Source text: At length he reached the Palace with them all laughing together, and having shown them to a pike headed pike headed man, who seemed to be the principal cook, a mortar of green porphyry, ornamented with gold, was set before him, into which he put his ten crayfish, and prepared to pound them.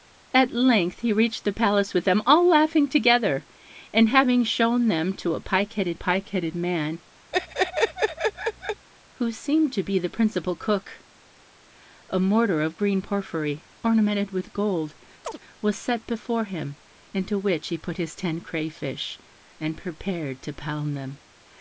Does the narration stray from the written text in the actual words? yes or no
no